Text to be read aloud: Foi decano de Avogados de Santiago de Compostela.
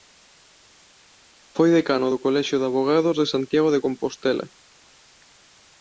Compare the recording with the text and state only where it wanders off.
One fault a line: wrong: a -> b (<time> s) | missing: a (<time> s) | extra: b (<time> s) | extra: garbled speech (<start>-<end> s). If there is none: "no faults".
extra: do Colexio (2.1 s)